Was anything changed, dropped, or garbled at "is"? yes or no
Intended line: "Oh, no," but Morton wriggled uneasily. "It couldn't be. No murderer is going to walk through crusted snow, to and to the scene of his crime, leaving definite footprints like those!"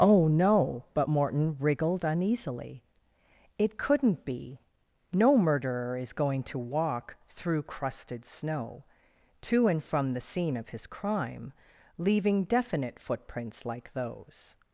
no